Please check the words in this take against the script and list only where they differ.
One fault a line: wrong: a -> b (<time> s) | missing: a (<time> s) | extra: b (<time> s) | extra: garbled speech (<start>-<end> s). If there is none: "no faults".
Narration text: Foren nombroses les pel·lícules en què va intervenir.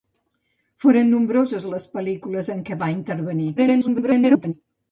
extra: garbled speech (3.6-4.5 s)